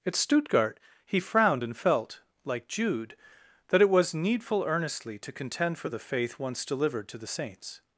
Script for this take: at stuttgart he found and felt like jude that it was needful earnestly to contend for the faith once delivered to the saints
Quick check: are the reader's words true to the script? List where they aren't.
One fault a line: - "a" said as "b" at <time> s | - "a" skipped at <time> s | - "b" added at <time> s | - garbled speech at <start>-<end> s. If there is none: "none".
- "found" said as "frowned" at 1.2 s